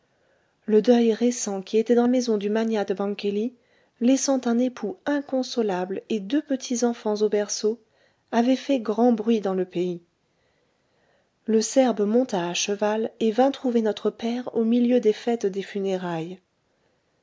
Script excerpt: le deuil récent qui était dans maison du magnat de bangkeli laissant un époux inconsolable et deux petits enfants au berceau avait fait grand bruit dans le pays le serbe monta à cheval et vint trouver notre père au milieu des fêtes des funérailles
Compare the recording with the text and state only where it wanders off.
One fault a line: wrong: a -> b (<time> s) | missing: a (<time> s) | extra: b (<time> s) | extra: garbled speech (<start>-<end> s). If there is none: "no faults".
no faults